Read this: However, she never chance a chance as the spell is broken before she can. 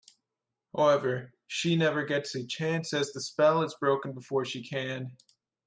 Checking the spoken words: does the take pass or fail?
fail